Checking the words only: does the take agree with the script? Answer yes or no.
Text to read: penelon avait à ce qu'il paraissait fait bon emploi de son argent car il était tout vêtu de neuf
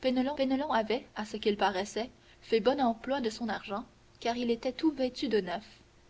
no